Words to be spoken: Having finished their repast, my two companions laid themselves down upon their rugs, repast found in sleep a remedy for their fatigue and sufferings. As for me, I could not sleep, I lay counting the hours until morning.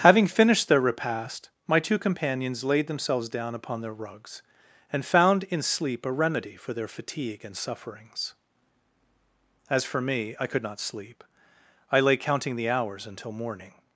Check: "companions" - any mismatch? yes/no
no